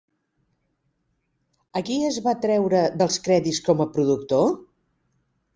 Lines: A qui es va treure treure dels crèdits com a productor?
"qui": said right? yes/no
yes